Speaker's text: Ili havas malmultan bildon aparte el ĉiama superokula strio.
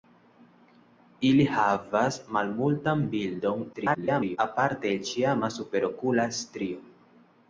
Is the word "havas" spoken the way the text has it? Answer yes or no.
yes